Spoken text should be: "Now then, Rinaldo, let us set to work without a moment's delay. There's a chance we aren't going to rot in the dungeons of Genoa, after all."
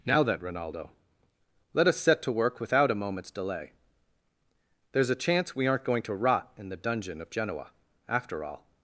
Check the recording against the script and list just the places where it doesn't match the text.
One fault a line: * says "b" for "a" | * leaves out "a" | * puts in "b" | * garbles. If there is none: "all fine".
* says "dungeon" for "dungeons"